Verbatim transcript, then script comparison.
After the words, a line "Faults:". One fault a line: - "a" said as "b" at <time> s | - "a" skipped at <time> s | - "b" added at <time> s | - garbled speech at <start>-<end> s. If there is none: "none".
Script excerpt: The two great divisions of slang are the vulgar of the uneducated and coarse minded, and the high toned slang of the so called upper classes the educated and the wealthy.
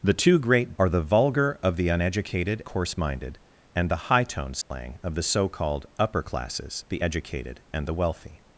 The two great are the vulgar of the uneducated coarse minded, and the high toned slang of the so called upper classes the educated and the wealthy.
Faults:
- "divisions of slang" skipped at 0.7 s
- "and" skipped at 2.6 s